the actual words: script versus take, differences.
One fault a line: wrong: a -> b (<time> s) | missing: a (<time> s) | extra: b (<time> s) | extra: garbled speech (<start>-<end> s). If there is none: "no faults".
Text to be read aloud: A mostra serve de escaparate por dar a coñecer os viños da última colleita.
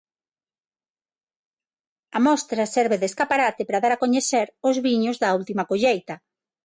wrong: por -> para (3.7 s)